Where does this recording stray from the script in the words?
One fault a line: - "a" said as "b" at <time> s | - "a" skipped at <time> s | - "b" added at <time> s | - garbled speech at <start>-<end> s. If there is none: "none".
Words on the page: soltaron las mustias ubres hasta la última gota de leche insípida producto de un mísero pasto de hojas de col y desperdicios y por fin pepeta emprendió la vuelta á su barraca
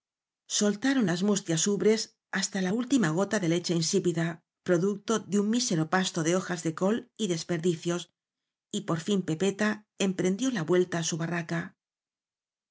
none